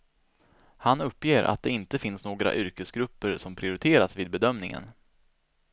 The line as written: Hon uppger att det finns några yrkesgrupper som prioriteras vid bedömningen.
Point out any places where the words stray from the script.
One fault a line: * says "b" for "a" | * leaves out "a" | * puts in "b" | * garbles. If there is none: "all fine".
* says "Han" for "Hon"
* puts in "inte"